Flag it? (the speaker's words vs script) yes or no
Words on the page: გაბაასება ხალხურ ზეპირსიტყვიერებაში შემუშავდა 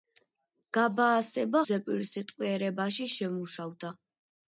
yes